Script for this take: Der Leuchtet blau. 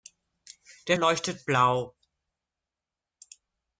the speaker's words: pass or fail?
pass